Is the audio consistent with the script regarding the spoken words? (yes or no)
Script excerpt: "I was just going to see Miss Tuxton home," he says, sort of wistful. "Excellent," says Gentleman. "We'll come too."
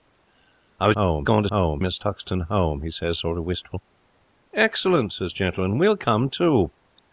no